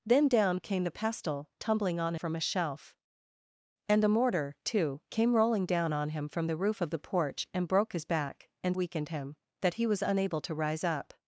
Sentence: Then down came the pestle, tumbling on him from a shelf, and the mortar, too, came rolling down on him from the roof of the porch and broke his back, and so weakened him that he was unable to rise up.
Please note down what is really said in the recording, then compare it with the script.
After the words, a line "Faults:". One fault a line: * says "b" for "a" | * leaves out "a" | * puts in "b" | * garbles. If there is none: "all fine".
Then down came the pestle, tumbling on from a shelf, and the mortar, too, came rolling down on him from the roof of the porch and broke his back, and weakened him that he was unable to rise up.
Faults:
* leaves out "him"
* leaves out "so"